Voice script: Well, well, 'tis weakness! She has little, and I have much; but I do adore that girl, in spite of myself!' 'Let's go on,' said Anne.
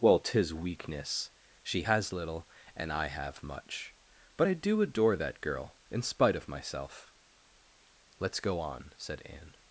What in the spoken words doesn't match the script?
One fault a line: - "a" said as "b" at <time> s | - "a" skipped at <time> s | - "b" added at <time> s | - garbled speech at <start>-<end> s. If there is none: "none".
- "well" skipped at 0.2 s